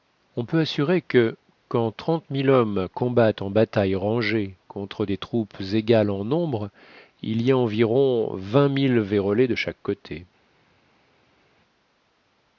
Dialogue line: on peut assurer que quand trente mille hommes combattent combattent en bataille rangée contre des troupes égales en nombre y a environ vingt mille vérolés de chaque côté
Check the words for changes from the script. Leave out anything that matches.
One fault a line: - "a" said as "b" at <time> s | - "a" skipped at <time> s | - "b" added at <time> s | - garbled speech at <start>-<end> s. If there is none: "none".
- "combattent" skipped at 3.4 s
- "il" added at 7.2 s